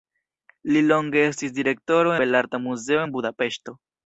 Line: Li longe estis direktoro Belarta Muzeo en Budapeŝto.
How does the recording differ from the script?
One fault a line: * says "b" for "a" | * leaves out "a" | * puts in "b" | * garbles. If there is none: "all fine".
all fine